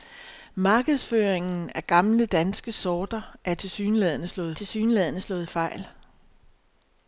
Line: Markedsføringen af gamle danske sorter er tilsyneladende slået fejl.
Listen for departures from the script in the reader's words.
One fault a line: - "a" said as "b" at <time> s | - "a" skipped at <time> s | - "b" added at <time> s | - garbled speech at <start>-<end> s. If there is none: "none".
- "tilsyneladende slået" added at 4.5 s